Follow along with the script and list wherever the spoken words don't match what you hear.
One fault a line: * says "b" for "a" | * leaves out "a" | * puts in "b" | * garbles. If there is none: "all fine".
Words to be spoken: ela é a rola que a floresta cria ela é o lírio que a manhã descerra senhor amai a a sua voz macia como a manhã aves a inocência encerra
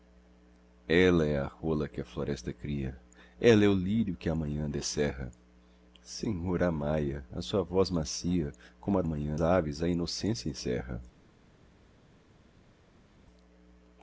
all fine